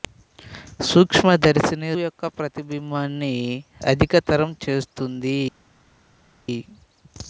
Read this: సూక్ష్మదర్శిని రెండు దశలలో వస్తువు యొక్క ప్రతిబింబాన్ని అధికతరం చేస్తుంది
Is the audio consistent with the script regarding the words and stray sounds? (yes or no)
no